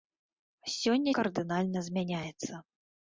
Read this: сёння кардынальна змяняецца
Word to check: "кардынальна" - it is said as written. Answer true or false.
true